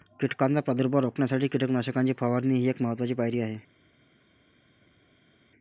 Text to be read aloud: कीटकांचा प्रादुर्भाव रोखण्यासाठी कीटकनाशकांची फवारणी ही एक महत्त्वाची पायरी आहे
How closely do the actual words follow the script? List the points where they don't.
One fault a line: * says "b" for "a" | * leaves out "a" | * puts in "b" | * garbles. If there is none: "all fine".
all fine